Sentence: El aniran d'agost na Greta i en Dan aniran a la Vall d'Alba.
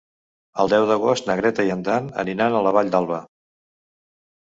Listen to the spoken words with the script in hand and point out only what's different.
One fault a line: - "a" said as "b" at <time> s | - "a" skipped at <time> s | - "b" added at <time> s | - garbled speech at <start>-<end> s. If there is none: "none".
- "aniran" said as "deu" at 0.7 s